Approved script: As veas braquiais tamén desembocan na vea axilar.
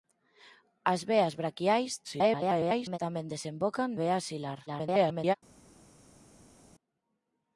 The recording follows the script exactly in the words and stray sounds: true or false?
false